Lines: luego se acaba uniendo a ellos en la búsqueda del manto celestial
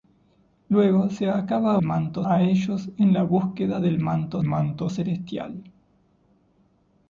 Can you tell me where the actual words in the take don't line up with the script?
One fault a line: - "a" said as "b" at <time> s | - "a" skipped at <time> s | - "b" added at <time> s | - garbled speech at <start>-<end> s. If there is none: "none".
- "uniendo" said as "manto" at 1.8 s
- "manto" added at 4.4 s